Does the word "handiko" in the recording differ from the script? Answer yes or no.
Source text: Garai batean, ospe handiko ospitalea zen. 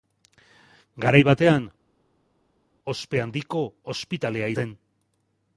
no